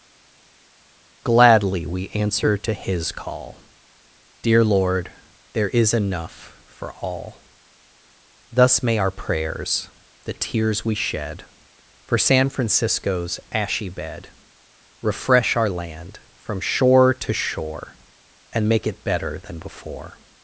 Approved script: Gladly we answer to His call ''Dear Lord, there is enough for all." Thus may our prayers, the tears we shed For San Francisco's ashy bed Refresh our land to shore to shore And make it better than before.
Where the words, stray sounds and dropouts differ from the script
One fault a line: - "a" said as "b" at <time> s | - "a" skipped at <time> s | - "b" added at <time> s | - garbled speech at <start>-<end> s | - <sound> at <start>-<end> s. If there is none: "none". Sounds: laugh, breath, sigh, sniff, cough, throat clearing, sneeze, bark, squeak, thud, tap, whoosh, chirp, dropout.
- "to" said as "from" at 16.3 s